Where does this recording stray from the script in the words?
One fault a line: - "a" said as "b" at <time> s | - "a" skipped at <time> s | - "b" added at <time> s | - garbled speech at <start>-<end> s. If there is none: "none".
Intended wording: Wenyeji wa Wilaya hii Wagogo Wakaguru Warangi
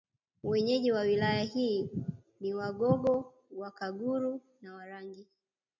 - "ni" added at 2.4 s
- "na" added at 4.6 s